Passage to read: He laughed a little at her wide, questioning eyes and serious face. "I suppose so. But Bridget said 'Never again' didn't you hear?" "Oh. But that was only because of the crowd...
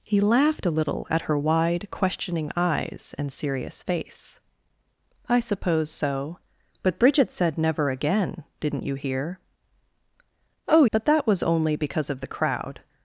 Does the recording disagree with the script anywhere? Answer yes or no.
no